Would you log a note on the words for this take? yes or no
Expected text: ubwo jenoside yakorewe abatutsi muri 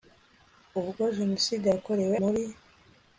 yes